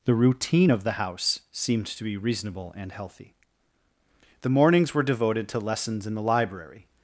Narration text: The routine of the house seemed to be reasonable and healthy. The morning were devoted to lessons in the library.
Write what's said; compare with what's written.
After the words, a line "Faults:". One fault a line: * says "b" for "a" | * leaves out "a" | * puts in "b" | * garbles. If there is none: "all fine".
The routine of the house seemed to be reasonable and healthy. The mornings were devoted to lessons in the library.
Faults:
* says "mornings" for "morning"